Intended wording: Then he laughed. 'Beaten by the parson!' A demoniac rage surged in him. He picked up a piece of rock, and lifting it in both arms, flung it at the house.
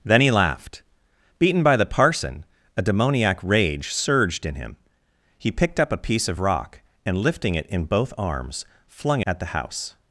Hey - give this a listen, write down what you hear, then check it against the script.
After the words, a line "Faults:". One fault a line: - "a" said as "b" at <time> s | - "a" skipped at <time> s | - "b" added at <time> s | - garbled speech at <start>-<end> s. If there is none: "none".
Then he laughed. 'Beaten by the parson!' A demoniac rage surged in him. He picked up a piece of rock, and lifting it in both arms, flung at the house.
Faults:
- "it" skipped at 9.2 s